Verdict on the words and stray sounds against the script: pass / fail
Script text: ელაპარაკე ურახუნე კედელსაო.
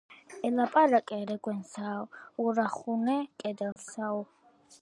fail